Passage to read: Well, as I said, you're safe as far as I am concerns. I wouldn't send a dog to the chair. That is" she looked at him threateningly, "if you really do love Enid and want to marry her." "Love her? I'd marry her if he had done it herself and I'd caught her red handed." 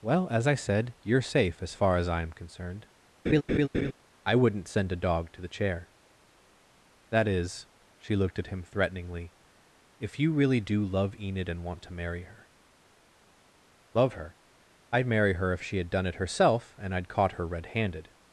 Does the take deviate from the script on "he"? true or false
true